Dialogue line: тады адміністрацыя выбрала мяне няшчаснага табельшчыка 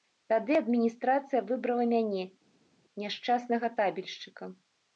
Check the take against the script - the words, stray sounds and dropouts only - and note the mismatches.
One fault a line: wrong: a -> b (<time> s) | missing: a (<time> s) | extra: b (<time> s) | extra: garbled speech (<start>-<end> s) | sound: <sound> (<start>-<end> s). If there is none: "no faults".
no faults